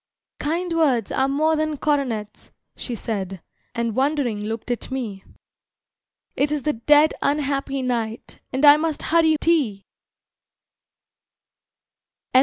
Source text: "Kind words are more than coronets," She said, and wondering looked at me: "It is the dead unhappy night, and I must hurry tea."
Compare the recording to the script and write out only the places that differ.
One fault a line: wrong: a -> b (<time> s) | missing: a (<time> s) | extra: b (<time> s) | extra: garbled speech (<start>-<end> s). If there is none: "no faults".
no faults